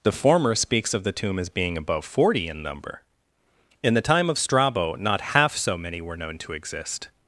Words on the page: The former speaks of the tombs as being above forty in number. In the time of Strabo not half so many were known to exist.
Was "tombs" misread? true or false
true